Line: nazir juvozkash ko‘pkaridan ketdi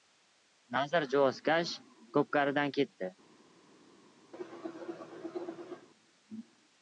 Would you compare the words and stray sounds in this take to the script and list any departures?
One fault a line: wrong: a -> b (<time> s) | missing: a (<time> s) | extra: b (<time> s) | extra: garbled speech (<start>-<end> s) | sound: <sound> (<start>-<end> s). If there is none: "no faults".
sound: cough (4.3-5.9 s)